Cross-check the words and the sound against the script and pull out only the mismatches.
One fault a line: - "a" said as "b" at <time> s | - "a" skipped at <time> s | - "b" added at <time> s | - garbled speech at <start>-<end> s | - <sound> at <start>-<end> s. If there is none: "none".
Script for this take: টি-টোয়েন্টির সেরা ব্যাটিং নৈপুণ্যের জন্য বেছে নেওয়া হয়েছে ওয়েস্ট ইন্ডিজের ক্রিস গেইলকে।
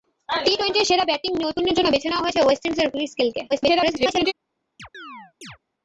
- garbled speech at 3.5-4.3 s
- chirp at 4.8-5.6 s